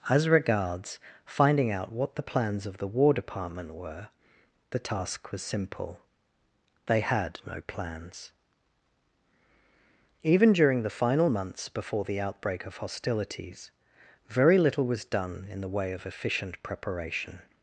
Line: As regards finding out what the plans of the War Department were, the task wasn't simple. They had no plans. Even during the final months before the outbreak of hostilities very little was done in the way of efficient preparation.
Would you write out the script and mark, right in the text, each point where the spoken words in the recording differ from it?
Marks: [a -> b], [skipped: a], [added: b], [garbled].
As regards finding out what the plans of the War Department were, the task [wasn't -> was] simple. They had no plans. Even during the final months before the outbreak of hostilities very little was done in the way of efficient preparation.